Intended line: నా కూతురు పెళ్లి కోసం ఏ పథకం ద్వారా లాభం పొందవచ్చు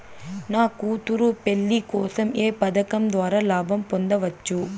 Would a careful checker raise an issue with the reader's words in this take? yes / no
no